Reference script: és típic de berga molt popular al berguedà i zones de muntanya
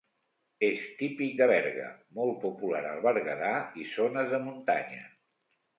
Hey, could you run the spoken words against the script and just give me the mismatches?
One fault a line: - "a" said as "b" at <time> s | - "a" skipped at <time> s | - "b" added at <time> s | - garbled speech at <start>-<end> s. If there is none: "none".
none